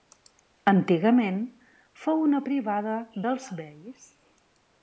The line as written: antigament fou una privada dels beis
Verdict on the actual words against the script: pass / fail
pass